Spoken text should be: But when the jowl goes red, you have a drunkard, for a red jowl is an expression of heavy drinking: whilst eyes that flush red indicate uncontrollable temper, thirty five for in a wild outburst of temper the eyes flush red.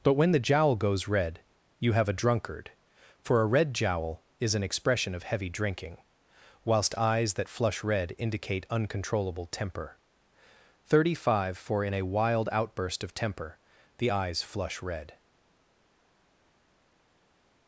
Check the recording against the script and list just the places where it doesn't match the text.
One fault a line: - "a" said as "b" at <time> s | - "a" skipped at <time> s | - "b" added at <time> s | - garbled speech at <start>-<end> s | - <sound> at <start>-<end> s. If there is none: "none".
none